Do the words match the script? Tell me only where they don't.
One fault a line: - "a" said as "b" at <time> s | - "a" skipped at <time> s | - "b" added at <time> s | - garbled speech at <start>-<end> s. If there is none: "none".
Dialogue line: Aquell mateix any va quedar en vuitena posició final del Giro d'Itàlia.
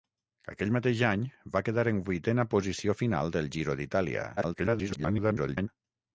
- garbled speech at 4.4-5.7 s